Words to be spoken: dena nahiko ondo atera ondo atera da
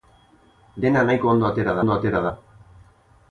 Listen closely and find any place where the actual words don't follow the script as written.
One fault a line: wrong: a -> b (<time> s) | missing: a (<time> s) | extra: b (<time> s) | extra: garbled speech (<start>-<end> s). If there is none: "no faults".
no faults